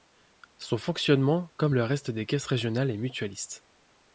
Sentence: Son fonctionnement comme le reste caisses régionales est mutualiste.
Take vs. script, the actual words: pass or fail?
fail